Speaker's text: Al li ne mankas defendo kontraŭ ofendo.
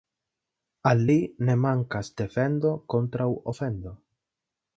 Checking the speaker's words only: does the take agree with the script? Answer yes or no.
yes